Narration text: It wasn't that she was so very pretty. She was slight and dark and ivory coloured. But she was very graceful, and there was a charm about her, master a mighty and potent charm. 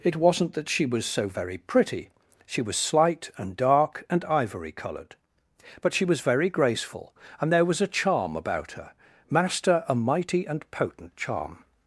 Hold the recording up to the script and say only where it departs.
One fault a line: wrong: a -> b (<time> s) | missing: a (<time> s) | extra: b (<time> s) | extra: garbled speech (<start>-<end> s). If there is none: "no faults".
no faults